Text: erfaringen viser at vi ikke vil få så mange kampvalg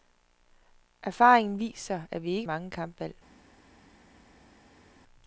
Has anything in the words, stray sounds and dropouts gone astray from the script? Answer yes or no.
yes